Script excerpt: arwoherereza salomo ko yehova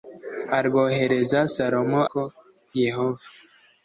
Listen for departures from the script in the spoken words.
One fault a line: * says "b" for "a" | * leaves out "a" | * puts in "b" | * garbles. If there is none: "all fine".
all fine